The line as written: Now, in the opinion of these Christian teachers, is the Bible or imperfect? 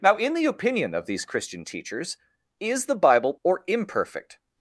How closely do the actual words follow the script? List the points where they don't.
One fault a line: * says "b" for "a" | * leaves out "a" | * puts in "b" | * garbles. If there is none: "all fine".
all fine